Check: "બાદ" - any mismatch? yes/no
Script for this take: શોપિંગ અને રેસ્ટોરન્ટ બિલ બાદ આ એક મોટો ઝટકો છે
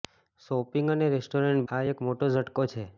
yes